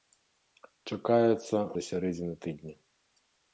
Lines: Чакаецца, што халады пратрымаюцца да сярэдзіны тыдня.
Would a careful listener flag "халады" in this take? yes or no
yes